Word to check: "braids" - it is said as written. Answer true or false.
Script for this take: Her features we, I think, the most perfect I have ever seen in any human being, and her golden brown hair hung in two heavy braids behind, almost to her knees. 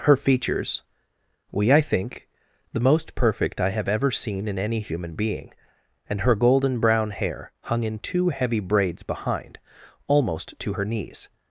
true